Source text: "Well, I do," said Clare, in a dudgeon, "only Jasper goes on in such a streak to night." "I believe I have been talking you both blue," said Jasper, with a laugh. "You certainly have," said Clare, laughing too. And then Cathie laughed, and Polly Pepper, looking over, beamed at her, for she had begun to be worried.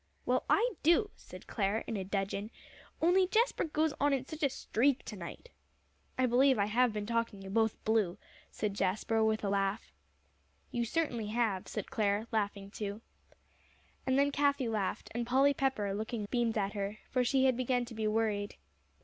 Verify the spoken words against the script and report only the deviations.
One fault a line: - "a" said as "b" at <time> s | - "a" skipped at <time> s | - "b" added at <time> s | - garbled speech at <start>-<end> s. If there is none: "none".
- "over" skipped at 16.3 s